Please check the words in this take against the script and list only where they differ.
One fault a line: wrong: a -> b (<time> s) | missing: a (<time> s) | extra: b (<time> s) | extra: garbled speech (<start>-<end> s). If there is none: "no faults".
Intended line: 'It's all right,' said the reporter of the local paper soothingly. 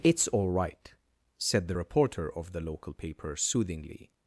no faults